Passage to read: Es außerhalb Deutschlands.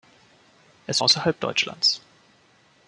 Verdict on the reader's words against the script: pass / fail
pass